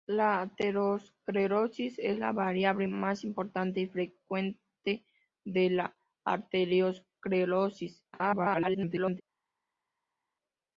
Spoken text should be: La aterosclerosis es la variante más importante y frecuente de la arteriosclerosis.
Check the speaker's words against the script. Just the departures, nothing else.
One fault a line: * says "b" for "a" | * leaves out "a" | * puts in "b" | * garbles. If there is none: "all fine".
* garbles